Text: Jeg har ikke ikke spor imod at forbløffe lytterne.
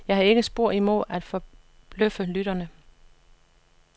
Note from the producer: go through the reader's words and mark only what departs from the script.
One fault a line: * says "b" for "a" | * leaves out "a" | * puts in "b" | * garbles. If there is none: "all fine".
* leaves out "ikke"